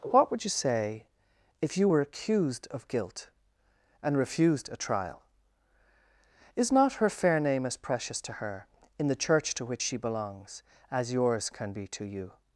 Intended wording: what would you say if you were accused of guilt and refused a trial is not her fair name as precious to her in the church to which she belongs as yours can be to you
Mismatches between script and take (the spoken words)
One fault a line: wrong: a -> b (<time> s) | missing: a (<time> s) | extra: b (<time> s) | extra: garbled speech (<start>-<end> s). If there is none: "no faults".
no faults